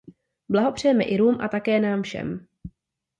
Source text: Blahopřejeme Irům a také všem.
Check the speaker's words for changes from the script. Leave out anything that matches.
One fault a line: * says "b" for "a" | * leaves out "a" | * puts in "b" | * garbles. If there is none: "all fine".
* puts in "nám"